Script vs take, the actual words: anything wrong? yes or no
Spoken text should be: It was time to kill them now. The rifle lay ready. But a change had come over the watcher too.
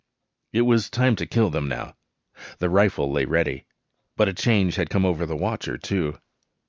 no